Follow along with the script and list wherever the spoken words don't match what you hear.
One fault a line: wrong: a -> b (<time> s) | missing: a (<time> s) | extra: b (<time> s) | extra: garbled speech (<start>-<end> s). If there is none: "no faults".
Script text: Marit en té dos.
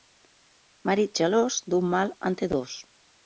extra: gelós d'un mal (1.2 s)